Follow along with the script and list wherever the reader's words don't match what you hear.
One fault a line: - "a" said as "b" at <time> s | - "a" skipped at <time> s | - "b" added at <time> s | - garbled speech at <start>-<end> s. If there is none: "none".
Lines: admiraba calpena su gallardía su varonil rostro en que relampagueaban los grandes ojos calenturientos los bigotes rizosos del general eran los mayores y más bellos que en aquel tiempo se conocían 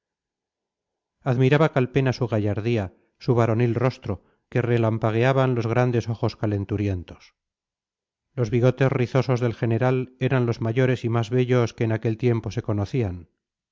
- "en" skipped at 4.2 s